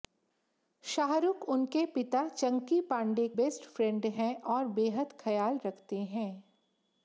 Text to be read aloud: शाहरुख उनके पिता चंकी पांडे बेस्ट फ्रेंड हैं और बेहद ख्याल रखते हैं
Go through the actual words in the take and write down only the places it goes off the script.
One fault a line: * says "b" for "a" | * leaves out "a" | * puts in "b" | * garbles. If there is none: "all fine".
all fine